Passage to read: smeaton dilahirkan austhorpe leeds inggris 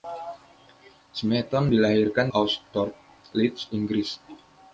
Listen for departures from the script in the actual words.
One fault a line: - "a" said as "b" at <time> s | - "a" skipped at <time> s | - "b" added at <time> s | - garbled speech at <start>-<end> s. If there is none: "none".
none